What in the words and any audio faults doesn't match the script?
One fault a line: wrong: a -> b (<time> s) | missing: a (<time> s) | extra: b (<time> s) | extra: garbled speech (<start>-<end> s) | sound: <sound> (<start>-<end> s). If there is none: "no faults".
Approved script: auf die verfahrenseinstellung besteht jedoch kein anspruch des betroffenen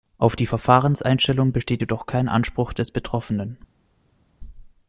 no faults